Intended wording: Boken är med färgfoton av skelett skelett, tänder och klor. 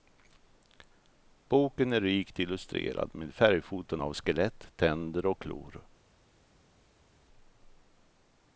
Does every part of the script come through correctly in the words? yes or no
no